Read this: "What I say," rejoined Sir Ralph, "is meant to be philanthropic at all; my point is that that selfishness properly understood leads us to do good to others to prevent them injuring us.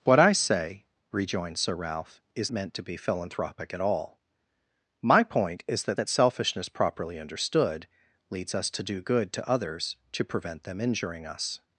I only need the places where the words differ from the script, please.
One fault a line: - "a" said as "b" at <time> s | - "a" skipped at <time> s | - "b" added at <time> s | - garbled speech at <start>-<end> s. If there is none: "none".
none